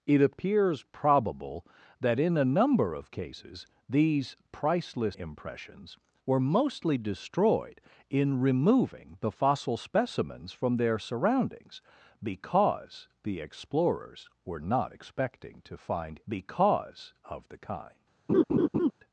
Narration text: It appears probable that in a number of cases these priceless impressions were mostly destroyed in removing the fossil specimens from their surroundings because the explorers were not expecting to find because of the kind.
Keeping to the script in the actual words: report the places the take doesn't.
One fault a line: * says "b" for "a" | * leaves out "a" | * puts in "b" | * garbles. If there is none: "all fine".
all fine